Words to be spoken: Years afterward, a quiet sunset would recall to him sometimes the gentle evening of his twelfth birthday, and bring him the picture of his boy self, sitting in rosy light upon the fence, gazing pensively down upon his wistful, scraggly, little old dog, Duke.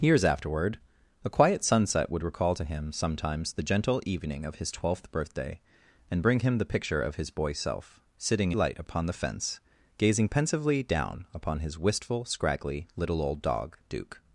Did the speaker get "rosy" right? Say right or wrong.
wrong